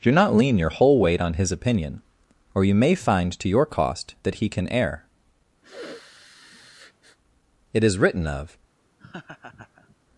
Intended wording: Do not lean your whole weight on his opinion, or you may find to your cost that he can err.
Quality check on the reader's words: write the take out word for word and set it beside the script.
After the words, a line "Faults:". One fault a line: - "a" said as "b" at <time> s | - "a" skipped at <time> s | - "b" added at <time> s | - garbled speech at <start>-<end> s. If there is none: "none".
Do not lean your whole weight on his opinion, or you may find to your cost that he can err. It is written of
Faults:
- "It is written of" added at 7.7 s